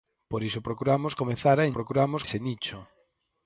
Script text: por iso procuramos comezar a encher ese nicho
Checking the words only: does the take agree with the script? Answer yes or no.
no